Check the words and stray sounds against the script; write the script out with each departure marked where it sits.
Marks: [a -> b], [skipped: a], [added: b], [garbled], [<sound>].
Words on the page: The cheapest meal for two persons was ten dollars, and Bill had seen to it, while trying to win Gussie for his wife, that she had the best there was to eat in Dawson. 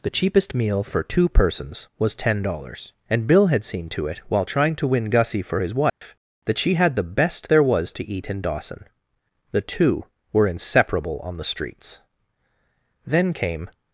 The cheapest meal for two persons was ten dollars, and Bill had seen to it, while trying to win Gussie for his wife, [dropout] that she had the best there was to eat in Dawson. [added: The two were inseparable on the streets Then came]